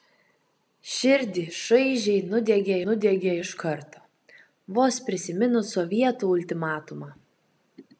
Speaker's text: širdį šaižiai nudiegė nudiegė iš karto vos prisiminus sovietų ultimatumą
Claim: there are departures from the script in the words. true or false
false